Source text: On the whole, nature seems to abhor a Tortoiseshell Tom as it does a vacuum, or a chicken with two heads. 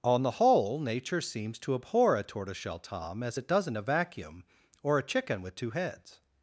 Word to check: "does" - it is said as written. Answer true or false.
false